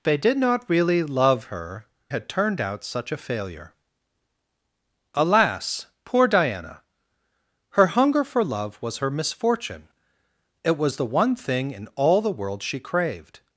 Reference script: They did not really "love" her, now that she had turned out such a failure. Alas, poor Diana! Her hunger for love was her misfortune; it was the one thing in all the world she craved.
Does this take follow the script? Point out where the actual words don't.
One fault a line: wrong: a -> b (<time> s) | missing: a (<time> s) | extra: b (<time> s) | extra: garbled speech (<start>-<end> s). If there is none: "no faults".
missing: now that she (1.9 s)